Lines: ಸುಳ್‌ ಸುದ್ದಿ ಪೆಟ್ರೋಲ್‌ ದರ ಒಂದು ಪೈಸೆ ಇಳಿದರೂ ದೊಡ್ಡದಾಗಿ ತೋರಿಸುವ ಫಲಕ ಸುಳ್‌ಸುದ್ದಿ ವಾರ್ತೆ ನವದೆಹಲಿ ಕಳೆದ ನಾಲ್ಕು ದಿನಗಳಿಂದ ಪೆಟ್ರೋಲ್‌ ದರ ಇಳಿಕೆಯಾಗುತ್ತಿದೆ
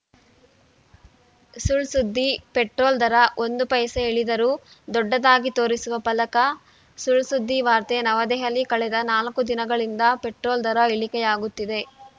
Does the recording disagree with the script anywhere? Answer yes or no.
no